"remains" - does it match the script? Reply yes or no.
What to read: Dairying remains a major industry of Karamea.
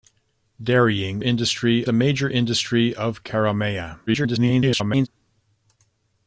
no